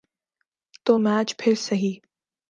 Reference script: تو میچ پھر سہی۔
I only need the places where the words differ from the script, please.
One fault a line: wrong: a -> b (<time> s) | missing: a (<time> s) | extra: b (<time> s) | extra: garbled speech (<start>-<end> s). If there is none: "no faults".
no faults